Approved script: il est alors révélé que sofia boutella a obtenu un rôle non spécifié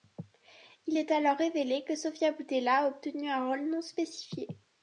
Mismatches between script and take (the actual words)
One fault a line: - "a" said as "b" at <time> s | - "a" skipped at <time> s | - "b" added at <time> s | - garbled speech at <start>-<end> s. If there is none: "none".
none